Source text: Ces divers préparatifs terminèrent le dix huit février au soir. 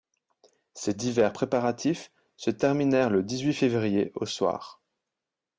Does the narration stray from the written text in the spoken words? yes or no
yes